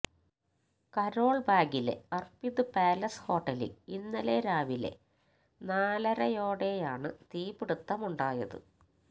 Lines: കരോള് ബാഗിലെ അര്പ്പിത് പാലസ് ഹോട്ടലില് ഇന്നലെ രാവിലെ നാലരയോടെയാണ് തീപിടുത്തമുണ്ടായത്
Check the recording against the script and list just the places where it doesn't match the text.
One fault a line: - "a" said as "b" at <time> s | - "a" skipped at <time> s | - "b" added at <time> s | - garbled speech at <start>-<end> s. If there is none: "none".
none